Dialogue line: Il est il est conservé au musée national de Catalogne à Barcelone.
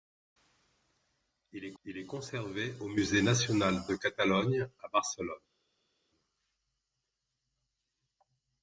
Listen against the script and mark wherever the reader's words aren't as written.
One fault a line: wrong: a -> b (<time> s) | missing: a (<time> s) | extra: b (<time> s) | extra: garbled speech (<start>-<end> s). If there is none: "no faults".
no faults